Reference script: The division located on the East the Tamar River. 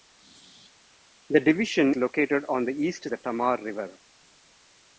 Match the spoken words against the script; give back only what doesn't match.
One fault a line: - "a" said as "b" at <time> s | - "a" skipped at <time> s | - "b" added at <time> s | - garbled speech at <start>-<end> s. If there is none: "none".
none